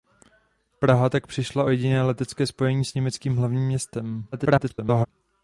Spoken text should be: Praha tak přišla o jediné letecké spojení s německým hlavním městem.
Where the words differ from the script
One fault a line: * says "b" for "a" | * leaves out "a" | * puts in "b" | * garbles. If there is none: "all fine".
* garbles